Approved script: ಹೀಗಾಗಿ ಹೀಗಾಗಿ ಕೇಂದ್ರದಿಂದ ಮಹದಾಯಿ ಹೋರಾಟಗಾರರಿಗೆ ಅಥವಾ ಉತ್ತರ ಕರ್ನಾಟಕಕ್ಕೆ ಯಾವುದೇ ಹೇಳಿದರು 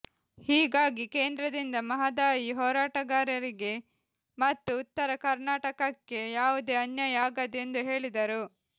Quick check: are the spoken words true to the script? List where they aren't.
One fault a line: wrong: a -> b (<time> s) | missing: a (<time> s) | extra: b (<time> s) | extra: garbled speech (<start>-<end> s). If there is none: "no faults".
missing: ಹೀಗಾಗಿ (1.1 s)
wrong: ಅಥವಾ -> ಮತ್ತು (4.4 s)
extra: ಅನ್ಯಾಯ ಆಗದು ಎಂದು (6.8 s)